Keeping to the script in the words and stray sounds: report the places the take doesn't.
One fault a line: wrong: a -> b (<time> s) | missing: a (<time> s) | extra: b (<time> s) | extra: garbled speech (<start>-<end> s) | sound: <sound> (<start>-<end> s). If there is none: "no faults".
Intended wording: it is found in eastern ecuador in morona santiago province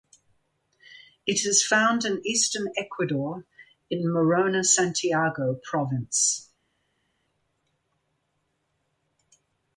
no faults